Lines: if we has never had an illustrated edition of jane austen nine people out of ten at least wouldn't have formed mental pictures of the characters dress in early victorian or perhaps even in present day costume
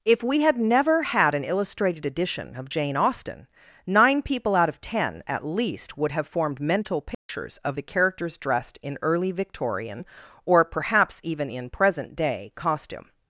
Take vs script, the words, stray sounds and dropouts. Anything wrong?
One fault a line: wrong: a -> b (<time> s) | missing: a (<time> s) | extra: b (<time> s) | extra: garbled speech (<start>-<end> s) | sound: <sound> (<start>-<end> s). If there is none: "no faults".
wrong: has -> had (0.4 s)
wrong: wouldn't -> would (6.0 s)
sound: dropout (7.1-7.3 s)
wrong: dress -> dressed (8.4 s)